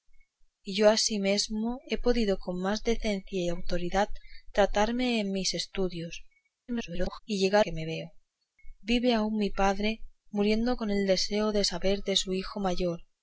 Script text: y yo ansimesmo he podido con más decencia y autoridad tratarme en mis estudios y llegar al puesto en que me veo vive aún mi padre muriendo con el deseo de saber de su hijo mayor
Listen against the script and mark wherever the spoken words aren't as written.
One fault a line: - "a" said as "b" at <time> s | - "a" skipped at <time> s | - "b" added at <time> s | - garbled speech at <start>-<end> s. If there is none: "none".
- garbled speech at 6.7-7.2 s
- "al puesto en" skipped at 7.6 s